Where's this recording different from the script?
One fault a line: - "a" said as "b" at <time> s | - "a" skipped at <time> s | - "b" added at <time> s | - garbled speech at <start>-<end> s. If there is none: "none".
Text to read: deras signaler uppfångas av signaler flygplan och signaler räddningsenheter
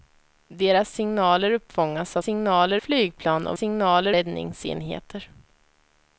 none